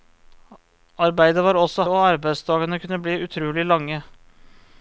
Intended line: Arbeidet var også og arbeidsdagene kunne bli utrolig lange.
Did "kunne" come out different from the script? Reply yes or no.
no